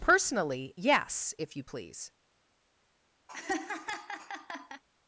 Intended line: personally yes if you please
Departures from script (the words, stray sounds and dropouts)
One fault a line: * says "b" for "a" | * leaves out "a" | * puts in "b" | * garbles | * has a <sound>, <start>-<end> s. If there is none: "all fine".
* has a laugh, 3.3-4.8 s